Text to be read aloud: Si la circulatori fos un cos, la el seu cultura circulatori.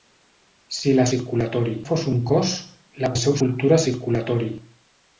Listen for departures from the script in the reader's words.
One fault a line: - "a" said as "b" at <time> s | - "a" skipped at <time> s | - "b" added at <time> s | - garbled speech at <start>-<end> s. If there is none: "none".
none